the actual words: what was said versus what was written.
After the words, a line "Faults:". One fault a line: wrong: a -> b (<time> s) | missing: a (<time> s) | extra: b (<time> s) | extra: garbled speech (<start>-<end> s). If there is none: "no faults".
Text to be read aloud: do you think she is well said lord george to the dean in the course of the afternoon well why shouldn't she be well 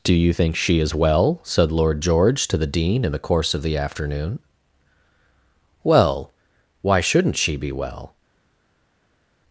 do you think she is well said lord george to the dean in the course of the afternoon well why shouldn't she be well
Faults:
no faults